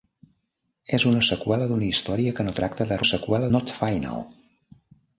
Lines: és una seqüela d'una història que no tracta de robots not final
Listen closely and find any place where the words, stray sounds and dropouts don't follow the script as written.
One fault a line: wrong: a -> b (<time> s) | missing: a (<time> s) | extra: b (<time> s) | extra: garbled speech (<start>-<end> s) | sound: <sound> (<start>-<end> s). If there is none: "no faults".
wrong: robots -> seqüela (3.1 s)